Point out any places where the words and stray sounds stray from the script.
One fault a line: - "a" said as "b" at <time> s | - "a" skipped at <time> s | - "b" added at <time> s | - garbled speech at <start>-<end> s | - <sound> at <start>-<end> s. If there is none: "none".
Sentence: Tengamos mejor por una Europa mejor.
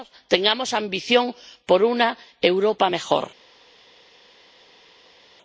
- "mejor" said as "ambición" at 0.7 s